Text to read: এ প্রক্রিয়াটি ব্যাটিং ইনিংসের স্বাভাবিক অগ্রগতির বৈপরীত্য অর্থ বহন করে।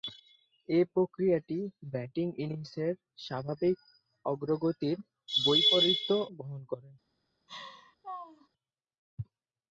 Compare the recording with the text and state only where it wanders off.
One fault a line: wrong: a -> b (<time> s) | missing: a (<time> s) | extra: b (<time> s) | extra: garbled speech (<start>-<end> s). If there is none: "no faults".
missing: অর্থ (6.1 s)